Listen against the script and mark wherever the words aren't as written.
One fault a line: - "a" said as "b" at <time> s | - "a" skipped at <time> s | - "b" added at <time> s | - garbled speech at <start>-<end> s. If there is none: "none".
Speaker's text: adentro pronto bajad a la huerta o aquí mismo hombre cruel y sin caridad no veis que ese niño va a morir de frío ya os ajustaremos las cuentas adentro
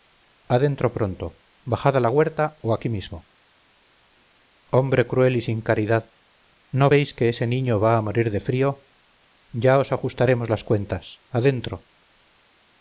none